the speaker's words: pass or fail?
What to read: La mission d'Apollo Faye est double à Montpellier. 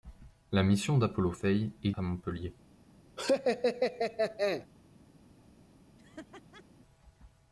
fail